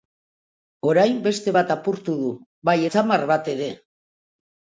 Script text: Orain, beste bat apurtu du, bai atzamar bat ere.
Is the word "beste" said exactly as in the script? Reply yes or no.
yes